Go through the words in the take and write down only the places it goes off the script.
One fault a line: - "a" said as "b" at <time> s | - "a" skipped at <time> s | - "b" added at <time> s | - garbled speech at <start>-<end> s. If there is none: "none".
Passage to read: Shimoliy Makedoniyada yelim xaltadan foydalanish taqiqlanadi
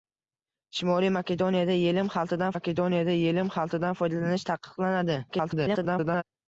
- "Makedoniyada yelim xaltadan" added at 2.5 s
- garbled speech at 5.3-6.2 s